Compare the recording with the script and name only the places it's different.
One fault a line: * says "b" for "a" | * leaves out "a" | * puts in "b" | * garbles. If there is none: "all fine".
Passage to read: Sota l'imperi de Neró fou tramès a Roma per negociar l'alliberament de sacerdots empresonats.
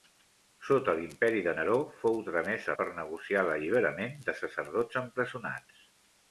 * leaves out "Roma"